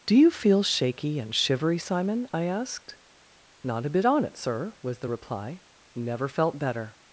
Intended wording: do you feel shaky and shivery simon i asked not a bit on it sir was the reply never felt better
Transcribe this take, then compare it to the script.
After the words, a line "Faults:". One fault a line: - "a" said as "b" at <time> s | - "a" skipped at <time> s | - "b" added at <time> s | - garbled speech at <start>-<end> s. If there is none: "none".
do you feel shaky and shivery simon i asked not a bit on it sir was the reply never felt better
Faults:
none